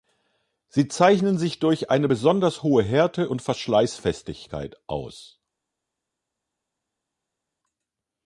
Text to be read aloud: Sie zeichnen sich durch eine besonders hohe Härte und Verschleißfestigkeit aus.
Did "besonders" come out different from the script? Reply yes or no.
no